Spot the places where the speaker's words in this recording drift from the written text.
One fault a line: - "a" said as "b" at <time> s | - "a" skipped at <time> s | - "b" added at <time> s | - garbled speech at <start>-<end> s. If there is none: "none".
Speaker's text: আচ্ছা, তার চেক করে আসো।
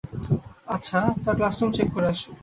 - "ক্লাসরুম" added at 1.4 s